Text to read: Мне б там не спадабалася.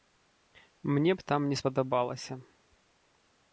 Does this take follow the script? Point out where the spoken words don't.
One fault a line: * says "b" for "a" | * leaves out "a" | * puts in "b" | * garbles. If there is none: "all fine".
all fine